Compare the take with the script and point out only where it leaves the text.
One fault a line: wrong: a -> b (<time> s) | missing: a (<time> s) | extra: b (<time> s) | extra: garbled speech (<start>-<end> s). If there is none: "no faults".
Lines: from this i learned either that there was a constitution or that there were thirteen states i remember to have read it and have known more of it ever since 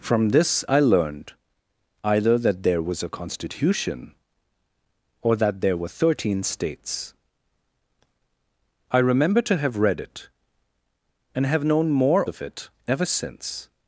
no faults